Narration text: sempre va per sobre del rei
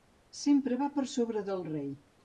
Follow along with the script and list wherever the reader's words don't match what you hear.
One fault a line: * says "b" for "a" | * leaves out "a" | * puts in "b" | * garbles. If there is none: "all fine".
all fine